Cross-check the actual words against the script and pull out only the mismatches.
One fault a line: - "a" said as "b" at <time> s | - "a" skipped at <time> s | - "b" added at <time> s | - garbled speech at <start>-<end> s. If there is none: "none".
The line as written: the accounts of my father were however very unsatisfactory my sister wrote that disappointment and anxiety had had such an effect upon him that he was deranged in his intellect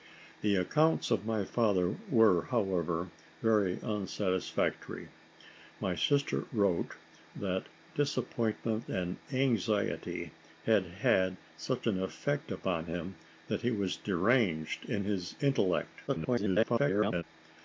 - garbled speech at 16.1-17.2 s